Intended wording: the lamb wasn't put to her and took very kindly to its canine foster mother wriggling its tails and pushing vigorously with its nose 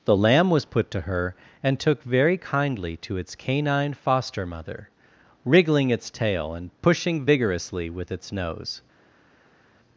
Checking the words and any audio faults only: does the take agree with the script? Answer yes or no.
no